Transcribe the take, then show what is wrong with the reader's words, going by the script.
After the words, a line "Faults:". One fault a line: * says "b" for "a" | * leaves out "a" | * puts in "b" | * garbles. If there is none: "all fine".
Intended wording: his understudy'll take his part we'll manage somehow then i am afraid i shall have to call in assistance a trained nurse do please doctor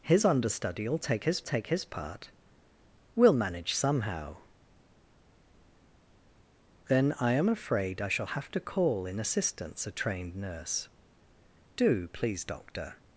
his understudy'll take his take his part we'll manage somehow then i am afraid i shall have to call in assistance a trained nurse do please doctor
Faults:
* puts in "take his"